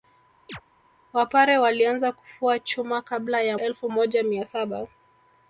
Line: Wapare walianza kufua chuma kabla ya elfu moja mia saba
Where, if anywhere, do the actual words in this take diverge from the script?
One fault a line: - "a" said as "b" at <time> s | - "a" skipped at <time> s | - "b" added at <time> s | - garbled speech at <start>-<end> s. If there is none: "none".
none